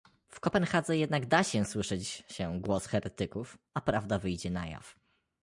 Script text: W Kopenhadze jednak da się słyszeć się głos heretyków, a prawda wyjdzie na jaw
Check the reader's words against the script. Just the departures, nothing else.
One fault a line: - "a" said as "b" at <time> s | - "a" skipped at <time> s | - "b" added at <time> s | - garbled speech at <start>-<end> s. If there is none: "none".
none